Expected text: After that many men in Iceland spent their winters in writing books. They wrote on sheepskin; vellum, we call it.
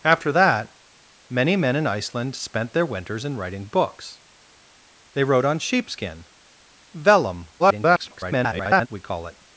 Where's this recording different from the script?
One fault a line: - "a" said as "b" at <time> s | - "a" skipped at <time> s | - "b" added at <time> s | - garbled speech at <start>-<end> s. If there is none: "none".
- garbled speech at 7.6-8.9 s